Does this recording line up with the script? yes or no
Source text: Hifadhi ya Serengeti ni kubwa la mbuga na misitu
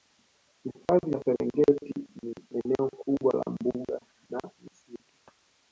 no